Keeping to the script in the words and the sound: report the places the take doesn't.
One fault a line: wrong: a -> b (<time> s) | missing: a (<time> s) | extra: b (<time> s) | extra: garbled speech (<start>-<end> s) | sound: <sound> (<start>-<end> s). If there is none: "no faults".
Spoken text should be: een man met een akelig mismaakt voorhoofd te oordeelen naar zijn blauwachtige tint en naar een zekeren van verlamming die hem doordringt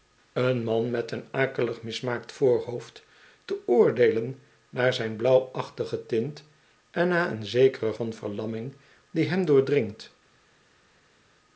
no faults